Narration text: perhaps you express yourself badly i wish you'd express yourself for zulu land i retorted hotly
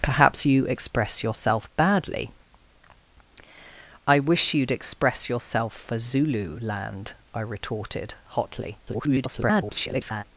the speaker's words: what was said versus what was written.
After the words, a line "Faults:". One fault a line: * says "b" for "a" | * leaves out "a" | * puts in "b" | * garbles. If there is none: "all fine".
perhaps you express yourself badly i wish you'd express yourself for zulu land i retorted hotly [garbled]
Faults:
* garbles